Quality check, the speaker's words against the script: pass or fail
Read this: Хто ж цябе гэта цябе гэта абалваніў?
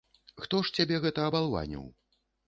fail